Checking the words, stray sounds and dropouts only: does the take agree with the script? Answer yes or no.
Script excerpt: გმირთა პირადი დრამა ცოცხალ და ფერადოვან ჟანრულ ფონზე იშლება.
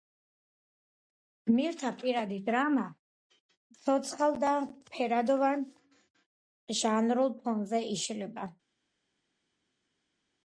yes